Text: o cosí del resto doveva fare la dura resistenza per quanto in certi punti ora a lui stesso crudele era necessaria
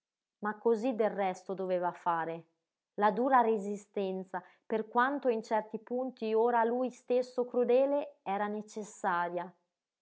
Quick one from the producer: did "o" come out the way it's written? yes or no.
no